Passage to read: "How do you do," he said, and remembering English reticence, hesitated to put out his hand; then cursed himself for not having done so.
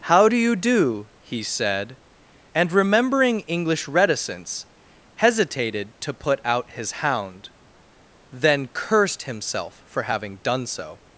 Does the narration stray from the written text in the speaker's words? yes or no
yes